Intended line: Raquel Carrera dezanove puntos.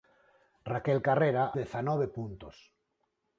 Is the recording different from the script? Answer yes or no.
no